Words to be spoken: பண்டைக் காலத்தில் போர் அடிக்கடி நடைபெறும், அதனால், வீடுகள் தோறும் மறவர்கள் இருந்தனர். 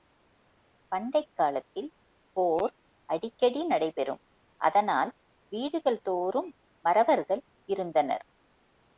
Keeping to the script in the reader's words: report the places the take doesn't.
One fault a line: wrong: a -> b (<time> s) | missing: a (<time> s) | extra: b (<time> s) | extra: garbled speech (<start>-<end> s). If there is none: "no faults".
no faults